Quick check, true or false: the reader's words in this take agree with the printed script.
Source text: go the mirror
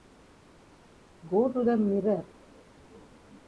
false